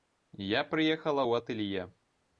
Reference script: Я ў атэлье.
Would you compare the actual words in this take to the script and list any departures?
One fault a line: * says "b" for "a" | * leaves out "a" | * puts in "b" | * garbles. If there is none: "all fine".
* puts in "прыехала"